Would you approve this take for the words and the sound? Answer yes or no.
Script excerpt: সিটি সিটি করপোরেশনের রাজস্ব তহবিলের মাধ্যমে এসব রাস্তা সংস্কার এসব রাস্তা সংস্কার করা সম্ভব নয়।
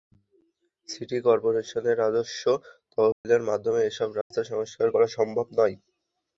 no